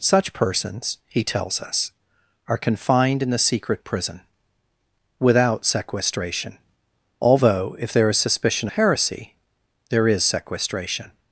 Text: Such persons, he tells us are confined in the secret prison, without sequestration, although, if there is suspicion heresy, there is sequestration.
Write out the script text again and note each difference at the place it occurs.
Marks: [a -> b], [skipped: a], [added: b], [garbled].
Such persons, he tells us are confined in the secret prison, without sequestration, although, if there is suspicion heresy, there is sequestration.